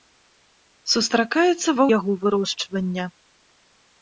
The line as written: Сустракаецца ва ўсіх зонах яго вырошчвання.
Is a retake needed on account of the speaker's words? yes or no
yes